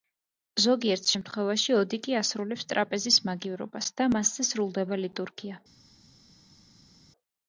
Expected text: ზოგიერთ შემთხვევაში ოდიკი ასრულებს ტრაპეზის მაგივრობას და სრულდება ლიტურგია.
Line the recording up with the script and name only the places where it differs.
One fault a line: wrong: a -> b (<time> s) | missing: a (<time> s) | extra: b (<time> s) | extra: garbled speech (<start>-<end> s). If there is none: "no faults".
extra: მასზე (4.1 s)